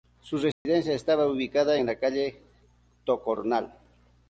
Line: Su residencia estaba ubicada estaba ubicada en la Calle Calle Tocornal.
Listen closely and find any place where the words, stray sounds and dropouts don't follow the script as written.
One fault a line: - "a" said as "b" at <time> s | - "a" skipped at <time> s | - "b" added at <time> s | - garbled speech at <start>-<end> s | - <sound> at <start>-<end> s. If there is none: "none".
- dropout at 0.5-0.7 s
- "estaba ubicada" skipped at 1.8 s
- "Calle" skipped at 2.4 s